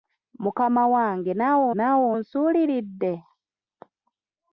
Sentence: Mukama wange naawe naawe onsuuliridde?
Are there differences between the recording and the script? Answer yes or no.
no